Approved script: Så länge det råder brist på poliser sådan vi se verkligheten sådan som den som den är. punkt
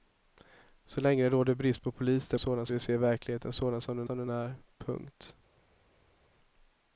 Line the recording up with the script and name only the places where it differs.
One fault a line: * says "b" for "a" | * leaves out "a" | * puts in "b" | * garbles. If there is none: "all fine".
all fine